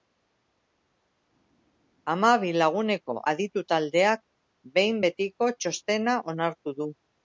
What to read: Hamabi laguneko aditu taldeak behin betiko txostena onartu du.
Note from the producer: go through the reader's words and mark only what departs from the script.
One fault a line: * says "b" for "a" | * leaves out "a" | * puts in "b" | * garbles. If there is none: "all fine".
all fine